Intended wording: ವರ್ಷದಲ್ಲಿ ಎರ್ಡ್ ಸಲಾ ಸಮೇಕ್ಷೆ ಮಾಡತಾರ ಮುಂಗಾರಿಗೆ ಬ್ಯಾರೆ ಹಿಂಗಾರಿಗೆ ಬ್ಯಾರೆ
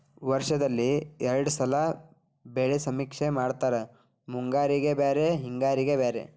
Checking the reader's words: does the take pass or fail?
fail